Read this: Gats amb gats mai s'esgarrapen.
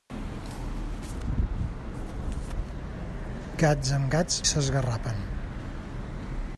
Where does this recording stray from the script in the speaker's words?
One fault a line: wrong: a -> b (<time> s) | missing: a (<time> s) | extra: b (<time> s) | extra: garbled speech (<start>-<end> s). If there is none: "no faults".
missing: mai (4.4 s)